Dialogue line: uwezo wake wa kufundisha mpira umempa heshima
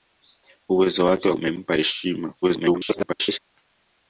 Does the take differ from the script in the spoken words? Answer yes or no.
yes